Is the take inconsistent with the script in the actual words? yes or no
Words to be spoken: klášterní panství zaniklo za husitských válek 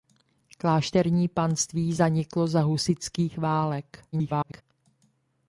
yes